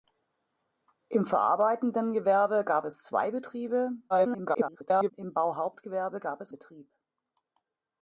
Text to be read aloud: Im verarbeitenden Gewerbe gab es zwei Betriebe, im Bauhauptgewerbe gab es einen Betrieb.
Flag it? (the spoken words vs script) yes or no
yes